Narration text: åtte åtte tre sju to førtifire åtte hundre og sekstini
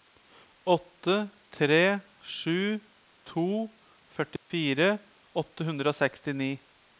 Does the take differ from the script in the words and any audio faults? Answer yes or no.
yes